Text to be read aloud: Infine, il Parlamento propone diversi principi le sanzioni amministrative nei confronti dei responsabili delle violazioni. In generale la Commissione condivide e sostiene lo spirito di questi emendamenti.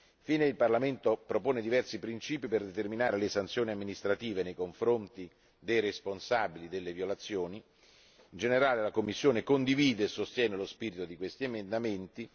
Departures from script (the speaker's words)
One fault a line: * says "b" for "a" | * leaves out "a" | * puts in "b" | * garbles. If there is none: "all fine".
* puts in "per determinare"